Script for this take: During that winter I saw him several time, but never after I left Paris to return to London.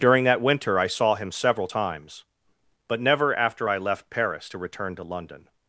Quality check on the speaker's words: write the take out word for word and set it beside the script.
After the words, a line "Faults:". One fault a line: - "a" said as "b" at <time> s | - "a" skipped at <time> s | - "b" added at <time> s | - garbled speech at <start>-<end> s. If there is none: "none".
During that winter I saw him several times, but never after I left Paris to return to London.
Faults:
- "time" said as "times" at 1.6 s